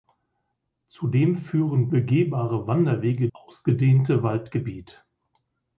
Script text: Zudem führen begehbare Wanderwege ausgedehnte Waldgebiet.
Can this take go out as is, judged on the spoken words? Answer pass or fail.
pass